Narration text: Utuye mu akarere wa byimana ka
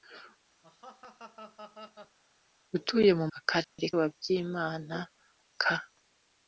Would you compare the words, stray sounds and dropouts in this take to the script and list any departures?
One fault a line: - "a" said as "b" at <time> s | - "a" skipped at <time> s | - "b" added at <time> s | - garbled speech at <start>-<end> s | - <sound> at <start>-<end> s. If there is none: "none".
- laugh at 0.6-2.2 s
- dropout at 3.6-3.8 s